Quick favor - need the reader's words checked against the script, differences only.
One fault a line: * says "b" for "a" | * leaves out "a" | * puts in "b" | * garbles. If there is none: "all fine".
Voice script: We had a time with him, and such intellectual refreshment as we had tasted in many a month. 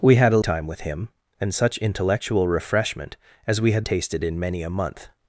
all fine